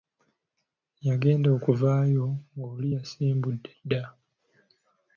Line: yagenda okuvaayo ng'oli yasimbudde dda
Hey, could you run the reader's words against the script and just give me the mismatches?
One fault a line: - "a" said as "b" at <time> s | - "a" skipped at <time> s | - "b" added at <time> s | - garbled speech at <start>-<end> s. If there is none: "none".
none